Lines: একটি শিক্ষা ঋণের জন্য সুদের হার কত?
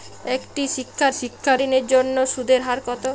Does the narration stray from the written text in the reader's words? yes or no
yes